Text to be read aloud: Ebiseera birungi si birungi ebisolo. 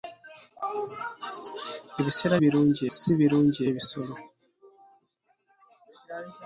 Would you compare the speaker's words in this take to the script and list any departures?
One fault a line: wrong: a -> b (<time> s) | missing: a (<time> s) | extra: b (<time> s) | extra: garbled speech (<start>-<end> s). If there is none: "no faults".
no faults